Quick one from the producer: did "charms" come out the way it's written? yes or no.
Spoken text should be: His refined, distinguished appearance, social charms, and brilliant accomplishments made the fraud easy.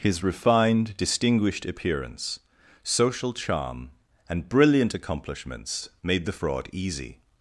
no